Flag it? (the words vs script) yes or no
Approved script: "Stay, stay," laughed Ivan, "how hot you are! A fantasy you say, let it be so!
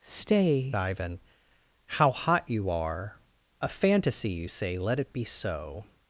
yes